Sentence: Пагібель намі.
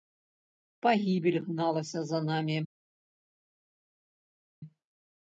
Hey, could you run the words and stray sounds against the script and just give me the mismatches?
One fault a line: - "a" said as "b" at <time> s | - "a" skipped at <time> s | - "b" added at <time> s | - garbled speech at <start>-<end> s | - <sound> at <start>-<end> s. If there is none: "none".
- "гналася за" added at 1.4 s